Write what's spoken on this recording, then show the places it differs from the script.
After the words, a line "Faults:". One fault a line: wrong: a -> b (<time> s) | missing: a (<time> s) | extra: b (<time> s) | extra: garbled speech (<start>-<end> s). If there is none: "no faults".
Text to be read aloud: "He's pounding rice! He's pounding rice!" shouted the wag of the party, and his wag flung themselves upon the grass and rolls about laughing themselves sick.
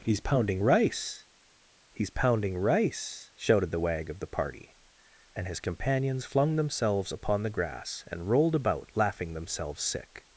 "He's pounding rice! He's pounding rice!" shouted the wag of the party, and his companions flung themselves upon the grass and rolled about laughing themselves sick.
Faults:
wrong: wag -> companions (5.6 s)
wrong: rolls -> rolled (8.3 s)